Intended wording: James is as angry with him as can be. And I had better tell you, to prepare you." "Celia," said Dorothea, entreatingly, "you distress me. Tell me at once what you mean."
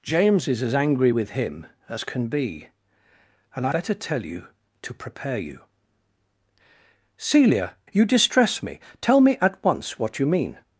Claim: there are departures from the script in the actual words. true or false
true